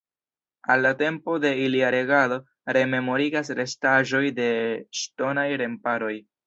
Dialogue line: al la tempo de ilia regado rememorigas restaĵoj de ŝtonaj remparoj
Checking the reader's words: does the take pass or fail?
pass